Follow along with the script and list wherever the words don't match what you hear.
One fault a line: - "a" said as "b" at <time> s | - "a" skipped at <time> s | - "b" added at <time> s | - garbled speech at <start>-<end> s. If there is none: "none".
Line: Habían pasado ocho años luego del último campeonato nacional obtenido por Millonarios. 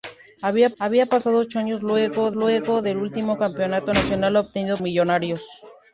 - "habían" added at 0.8 s
- "luego" added at 2.3 s
- "por" skipped at 4.8 s